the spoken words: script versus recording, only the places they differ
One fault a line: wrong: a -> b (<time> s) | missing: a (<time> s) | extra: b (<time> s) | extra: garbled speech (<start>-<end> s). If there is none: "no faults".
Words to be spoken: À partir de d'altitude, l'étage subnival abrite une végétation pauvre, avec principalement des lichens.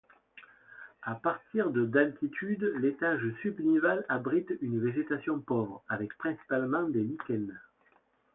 no faults